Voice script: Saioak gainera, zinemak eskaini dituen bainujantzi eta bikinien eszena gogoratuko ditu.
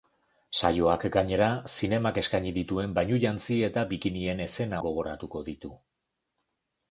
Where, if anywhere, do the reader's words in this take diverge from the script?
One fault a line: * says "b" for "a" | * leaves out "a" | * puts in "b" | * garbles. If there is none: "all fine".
all fine